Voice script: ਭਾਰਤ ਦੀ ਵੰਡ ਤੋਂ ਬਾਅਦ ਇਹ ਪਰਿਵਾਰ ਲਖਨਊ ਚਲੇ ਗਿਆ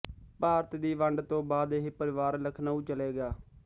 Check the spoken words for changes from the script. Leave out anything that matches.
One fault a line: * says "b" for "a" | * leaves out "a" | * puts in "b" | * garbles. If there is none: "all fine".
all fine